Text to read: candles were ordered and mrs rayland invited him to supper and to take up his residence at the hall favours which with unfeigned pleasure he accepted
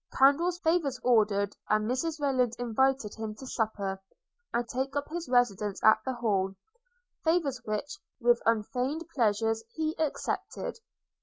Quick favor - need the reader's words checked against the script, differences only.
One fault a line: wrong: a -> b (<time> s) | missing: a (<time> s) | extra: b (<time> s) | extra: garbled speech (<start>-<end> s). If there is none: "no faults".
wrong: were -> favours (0.6 s)
missing: to (4.7 s)